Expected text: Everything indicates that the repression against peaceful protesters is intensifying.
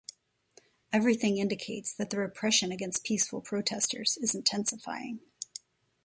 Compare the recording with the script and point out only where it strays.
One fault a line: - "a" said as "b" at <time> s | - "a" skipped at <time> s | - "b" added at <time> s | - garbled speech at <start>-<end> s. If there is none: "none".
none